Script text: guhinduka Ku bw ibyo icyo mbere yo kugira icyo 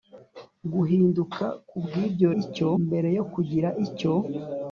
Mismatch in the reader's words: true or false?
false